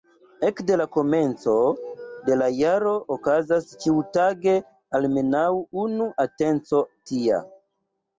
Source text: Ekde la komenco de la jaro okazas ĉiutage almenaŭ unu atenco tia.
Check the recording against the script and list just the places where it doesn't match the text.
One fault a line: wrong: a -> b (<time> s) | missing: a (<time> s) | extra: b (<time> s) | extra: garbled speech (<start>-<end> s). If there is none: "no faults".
no faults